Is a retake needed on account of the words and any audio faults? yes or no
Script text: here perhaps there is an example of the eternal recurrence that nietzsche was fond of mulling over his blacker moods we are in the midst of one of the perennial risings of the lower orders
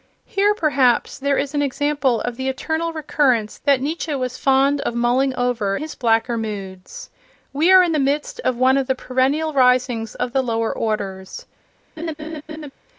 yes